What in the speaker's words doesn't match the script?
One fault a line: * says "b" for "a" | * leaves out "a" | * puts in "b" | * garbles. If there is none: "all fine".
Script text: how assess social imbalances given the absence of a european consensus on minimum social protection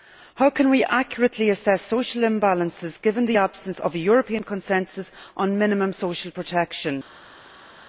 * puts in "can we accurately"